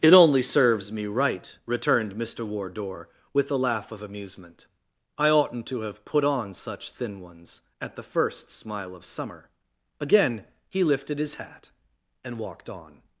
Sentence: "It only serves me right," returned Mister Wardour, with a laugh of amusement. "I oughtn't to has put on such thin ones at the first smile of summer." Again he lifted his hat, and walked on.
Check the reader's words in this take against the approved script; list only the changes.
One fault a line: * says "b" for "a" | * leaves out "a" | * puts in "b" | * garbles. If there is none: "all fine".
* says "have" for "has"